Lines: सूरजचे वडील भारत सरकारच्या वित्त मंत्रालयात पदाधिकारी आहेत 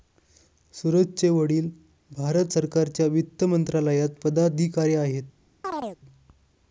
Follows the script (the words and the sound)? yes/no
no